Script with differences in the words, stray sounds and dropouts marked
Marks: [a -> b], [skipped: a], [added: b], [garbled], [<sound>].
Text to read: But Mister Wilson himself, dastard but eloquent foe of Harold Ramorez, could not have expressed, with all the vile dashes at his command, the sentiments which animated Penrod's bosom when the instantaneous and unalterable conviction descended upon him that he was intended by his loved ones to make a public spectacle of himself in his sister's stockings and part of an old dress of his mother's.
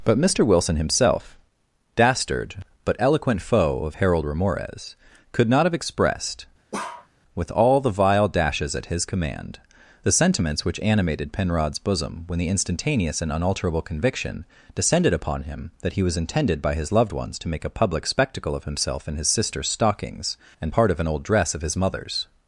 But Mister Wilson himself, dastard but eloquent foe of Harold Ramorez, could not have expressed, [bark] with all the vile dashes at his command, the sentiments which animated Penrod's bosom when the instantaneous and unalterable conviction descended upon him that he was intended by his loved ones to make a public spectacle of himself in his sister's stockings and part of an old dress of his mother's.